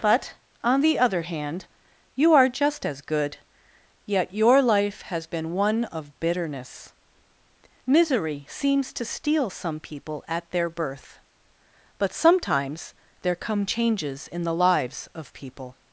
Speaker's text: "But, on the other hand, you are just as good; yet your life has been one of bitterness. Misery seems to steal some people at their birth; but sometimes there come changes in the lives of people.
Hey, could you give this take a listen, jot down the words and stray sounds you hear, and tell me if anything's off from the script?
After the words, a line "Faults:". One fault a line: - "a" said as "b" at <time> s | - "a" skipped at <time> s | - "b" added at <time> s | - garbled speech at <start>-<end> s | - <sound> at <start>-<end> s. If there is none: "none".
"But, on the other hand, you are just as good; yet your life has been one of bitterness. Misery seems to steal some people at their birth; but sometimes there come changes in the lives of people.
Faults:
none